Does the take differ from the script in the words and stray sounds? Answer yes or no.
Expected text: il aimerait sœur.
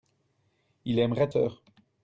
no